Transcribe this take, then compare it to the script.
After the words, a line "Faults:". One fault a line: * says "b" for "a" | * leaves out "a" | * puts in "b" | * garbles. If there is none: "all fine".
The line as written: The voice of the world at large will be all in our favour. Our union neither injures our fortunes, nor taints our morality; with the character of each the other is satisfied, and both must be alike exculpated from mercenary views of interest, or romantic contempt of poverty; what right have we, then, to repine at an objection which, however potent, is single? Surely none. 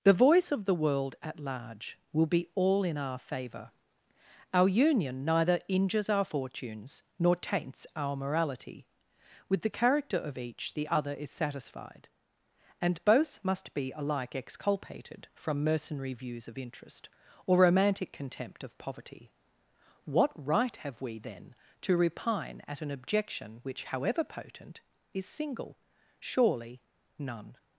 The voice of the world at large will be all in our favour. Our union neither injures our fortunes, nor taints our morality; with the character of each the other is satisfied, and both must be alike exculpated from mercenary views of interest, or romantic contempt of poverty; what right have we, then, to repine at an objection which, however potent, is single? Surely none.
Faults:
all fine